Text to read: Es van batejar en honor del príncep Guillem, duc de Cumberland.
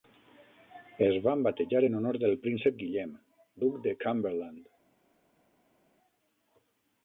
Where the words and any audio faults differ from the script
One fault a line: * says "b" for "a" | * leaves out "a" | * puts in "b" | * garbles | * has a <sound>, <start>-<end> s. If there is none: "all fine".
all fine